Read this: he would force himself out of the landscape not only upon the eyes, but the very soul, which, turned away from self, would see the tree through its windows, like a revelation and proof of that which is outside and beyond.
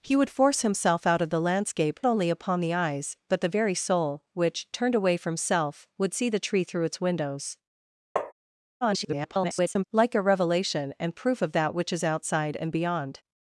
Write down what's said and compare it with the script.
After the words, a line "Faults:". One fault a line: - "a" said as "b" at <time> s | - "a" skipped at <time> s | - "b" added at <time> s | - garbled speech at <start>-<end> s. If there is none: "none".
he would force himself out of the landscape only upon the eyes, but the very soul, which, turned away from self, would see the tree through its windows, [garbled] like a revelation and proof of that which is outside and beyond.
Faults:
- "not" skipped at 2.0 s
- garbled speech at 8.8-9.8 s